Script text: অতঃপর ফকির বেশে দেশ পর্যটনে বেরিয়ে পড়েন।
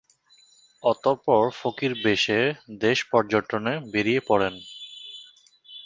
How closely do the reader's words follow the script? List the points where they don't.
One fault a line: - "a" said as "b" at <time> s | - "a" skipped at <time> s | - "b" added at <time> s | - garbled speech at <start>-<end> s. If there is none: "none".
none